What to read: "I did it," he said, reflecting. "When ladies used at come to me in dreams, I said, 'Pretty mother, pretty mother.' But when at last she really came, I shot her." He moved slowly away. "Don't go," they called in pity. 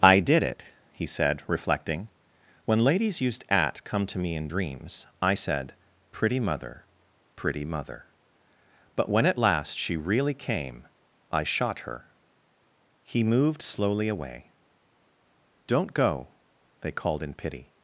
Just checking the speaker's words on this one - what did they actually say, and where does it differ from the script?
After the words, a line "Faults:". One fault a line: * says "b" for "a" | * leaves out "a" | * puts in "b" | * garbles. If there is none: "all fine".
"I did it," he said, reflecting. "When ladies used at come to me in dreams, I said, 'Pretty mother, pretty mother.' But when at last she really came, I shot her." He moved slowly away. "Don't go," they called in pity.
Faults:
all fine